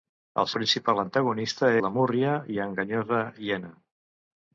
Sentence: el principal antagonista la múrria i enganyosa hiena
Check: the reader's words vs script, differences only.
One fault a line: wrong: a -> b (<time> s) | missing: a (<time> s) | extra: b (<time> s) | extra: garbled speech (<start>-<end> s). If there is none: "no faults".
no faults